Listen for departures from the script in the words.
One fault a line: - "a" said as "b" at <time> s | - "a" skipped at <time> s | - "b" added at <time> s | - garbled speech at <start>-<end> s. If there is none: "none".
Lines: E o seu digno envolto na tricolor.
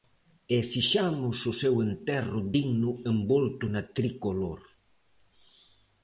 - "esixamos" added at 0.6 s
- "enterro" added at 1.9 s